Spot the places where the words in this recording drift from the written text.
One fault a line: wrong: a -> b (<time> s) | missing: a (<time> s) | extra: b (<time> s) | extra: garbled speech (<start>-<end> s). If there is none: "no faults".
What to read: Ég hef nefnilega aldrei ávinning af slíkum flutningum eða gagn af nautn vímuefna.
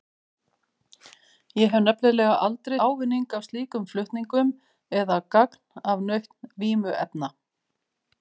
no faults